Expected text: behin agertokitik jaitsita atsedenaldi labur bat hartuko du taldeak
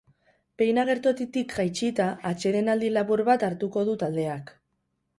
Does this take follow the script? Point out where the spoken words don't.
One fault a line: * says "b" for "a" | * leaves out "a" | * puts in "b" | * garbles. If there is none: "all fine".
all fine